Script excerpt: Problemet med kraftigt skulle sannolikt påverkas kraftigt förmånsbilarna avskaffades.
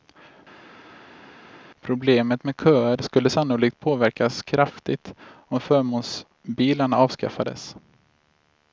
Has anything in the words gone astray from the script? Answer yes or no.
yes